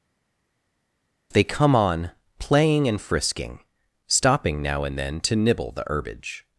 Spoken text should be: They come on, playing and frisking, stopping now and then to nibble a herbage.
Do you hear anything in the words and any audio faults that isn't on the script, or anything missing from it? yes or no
yes